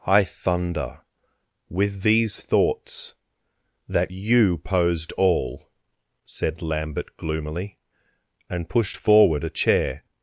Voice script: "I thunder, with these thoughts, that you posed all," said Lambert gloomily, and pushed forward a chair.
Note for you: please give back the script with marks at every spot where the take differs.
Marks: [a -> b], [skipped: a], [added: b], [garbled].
"I thunder, with these thoughts, that you posed all," said Lambert gloomily, and pushed forward a chair.